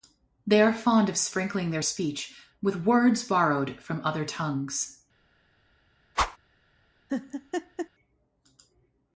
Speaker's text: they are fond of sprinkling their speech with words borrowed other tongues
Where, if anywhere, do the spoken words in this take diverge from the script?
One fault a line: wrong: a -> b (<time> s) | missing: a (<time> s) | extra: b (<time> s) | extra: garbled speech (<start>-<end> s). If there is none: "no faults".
extra: from (3.8 s)